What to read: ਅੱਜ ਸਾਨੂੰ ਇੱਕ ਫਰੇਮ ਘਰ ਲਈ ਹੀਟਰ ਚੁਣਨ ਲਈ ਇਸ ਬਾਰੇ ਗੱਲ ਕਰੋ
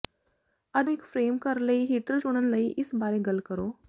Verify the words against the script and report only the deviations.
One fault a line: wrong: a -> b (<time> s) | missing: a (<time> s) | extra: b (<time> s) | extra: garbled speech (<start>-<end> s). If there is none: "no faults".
missing: ਸਾਨੂੰ (0.9 s)